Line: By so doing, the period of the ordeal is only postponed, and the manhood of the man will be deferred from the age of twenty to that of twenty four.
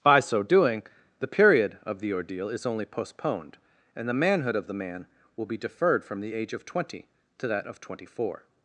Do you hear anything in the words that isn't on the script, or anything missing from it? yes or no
no